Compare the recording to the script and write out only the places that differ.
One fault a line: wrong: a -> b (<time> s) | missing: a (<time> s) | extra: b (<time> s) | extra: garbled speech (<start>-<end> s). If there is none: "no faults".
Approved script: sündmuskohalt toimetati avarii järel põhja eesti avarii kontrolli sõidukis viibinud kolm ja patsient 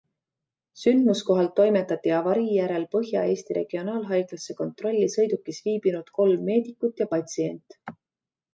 wrong: avarii -> regionaalhaiglasse (3.6 s)
extra: meedikut (6.5 s)